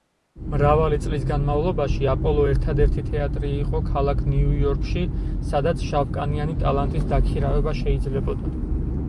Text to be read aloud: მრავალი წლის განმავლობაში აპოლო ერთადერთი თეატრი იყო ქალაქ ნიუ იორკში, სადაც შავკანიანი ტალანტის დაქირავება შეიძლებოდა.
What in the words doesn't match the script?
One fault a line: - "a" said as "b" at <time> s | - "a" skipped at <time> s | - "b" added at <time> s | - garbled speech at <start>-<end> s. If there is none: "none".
none